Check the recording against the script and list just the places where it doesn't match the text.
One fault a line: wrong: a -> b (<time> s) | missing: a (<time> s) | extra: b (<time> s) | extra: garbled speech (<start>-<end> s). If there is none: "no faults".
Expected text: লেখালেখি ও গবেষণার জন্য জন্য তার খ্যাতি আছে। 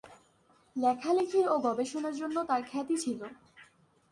missing: জন্য (2.4 s)
wrong: আছে -> ছিল (3.0 s)